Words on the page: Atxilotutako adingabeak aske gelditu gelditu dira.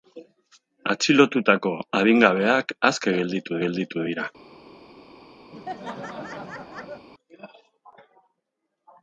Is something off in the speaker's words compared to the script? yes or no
no